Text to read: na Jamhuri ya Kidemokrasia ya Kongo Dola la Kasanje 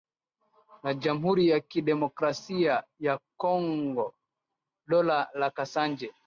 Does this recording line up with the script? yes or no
yes